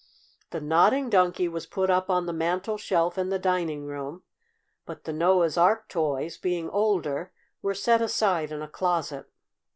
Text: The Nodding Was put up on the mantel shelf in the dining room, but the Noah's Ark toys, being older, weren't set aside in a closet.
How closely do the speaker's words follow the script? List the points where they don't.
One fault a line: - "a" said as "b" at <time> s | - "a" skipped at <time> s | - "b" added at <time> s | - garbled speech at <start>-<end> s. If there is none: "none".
- "Donkey" added at 1.1 s
- "weren't" said as "were" at 7.6 s